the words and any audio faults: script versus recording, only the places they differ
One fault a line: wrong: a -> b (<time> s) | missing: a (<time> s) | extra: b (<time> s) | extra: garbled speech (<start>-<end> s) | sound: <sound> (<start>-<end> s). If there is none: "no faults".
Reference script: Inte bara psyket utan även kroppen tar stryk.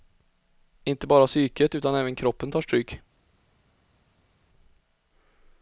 no faults